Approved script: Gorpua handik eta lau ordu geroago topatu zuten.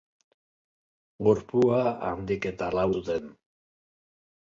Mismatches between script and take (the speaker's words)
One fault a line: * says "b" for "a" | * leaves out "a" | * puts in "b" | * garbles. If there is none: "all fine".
* leaves out "ordu geroago topatu"